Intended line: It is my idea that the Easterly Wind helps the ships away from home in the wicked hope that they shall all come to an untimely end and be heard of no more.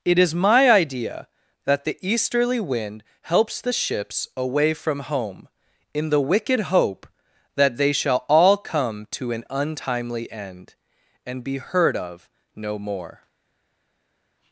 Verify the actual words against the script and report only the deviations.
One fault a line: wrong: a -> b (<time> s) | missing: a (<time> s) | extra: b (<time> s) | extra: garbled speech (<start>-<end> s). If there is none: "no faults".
no faults